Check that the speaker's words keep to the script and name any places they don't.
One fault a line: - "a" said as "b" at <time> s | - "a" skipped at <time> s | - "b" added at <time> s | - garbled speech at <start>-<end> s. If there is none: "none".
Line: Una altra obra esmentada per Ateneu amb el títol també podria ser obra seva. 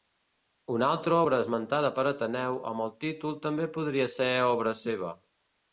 none